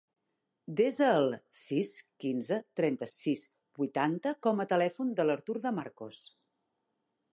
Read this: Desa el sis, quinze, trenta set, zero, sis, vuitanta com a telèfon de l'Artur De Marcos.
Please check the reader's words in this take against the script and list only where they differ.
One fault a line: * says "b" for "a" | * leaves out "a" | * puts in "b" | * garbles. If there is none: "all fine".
* leaves out "set zero"